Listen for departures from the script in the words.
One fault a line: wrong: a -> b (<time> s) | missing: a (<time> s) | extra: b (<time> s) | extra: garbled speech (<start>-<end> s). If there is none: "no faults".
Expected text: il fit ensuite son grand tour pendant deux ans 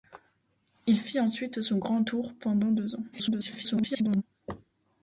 extra: garbled speech (3.1-4.2 s)